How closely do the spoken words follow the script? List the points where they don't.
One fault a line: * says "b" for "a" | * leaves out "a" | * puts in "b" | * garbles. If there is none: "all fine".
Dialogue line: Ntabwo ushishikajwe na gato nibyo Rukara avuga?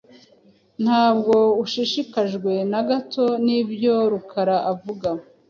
all fine